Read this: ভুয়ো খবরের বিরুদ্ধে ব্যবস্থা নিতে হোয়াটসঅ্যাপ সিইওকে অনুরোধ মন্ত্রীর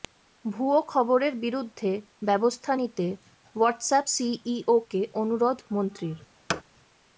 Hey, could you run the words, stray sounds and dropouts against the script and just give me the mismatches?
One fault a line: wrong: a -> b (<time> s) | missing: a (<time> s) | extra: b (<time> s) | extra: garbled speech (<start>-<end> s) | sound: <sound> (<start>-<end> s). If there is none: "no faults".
sound: thud (6.5-6.6 s)